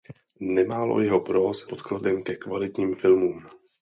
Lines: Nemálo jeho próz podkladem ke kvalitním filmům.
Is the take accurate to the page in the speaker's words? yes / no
yes